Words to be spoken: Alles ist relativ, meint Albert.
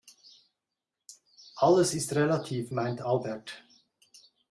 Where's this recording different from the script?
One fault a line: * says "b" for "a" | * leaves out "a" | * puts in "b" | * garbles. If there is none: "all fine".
all fine